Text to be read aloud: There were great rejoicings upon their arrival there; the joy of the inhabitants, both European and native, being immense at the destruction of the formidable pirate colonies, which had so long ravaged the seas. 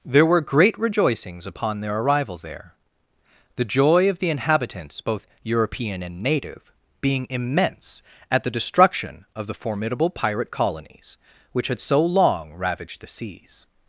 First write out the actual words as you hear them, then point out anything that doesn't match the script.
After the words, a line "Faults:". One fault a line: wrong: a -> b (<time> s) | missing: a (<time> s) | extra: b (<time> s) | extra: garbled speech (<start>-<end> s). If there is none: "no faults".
There were great rejoicings upon their arrival there; the joy of the inhabitants, both European and native, being immense at the destruction of the formidable pirate colonies, which had so long ravaged the seas.
Faults:
no faults